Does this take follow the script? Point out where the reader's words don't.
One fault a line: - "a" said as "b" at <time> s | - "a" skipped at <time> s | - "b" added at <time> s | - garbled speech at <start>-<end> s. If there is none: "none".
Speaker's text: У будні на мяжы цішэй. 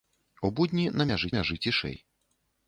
- "мяжы" added at 1.3 s